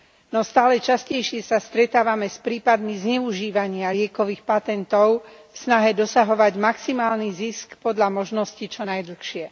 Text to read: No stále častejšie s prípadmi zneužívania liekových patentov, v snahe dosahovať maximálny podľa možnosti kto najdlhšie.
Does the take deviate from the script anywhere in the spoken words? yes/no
yes